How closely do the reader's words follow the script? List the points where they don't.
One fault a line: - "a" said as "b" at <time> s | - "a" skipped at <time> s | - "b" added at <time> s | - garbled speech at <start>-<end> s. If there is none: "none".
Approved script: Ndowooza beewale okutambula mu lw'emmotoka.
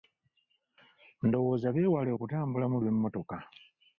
none